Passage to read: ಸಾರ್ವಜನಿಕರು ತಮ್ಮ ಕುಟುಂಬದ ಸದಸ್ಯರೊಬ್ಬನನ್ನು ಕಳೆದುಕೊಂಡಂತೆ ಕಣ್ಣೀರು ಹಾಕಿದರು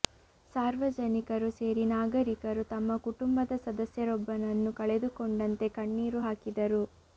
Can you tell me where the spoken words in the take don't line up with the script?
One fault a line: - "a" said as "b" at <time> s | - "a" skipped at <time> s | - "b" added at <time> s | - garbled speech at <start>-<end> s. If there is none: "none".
- "ಸೇರಿ ನಾಗರಿಕರು" added at 1.6 s